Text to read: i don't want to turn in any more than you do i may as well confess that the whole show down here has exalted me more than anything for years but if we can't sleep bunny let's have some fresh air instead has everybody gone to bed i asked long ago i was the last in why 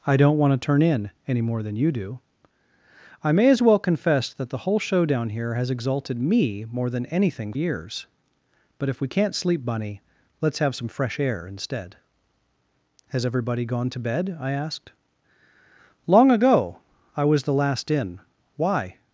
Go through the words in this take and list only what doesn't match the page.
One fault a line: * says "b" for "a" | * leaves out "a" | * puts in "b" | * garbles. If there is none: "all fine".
* leaves out "for"